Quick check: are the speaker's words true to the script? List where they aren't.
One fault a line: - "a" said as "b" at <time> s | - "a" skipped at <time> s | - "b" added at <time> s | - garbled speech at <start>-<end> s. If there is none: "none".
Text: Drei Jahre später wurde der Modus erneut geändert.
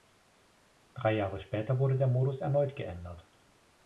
none